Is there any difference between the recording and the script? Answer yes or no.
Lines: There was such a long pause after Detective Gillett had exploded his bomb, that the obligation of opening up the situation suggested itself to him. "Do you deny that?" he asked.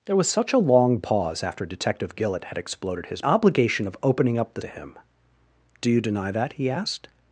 yes